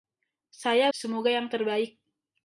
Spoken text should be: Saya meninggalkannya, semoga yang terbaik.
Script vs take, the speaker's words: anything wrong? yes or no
yes